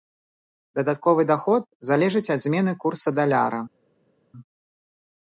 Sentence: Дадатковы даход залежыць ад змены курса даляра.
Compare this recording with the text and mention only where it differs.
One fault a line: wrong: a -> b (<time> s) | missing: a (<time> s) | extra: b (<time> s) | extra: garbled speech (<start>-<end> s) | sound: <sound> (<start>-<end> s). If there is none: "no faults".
no faults